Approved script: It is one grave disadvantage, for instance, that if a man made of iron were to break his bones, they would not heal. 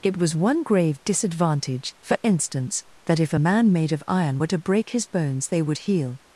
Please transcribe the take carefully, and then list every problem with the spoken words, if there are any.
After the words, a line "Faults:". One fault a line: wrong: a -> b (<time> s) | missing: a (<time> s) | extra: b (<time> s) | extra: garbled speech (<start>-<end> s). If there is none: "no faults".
It was one grave disadvantage, for instance, that if a man made of iron were to break his bones, they would heal.
Faults:
wrong: is -> was (0.2 s)
missing: not (5.8 s)